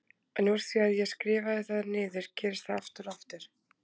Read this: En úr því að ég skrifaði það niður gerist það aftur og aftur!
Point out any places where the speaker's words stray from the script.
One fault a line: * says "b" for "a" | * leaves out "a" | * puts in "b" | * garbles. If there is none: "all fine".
all fine